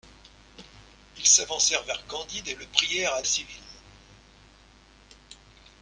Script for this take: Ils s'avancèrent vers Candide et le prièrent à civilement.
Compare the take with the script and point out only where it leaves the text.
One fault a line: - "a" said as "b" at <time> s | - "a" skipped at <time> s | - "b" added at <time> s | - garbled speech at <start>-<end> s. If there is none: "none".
none